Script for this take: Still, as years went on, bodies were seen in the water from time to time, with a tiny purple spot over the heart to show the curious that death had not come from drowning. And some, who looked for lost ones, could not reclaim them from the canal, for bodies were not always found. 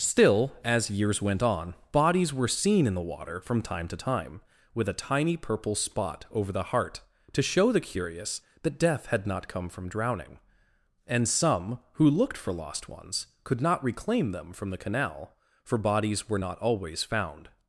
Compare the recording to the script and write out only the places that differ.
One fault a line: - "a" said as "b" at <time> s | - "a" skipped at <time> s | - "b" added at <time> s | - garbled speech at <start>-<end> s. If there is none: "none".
none